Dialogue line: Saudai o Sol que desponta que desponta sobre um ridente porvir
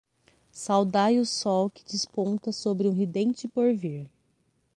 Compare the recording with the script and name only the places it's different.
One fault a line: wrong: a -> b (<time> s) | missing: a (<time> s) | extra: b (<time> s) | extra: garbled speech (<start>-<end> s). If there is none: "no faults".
missing: que desponta (2.5 s)